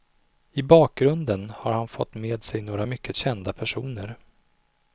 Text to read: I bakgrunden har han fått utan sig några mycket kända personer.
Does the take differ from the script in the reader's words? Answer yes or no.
yes